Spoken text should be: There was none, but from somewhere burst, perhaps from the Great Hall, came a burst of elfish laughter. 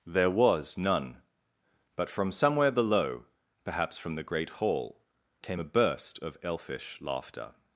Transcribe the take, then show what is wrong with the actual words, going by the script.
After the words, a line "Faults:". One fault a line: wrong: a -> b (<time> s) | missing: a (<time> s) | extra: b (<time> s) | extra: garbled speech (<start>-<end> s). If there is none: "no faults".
There was none, but from somewhere below, perhaps from the Great Hall, came a burst of elfish laughter.
Faults:
wrong: burst -> below (2.7 s)